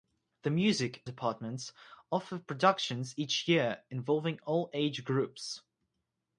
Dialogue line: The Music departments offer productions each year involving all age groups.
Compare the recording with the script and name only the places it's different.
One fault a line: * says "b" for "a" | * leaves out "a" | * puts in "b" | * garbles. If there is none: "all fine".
all fine